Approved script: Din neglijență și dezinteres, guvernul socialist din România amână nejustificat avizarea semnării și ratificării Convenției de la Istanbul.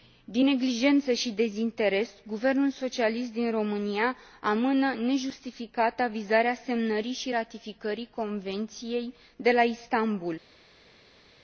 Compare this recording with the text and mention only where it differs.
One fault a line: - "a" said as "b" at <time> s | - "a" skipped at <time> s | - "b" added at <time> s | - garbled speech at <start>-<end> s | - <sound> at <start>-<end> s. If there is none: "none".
none